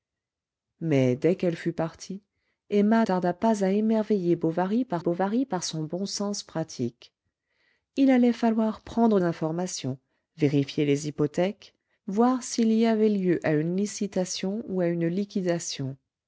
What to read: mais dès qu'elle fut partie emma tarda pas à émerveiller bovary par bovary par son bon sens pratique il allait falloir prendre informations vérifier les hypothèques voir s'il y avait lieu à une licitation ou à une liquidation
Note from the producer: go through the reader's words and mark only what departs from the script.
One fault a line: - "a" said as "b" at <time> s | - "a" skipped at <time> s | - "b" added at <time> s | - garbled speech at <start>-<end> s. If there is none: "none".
none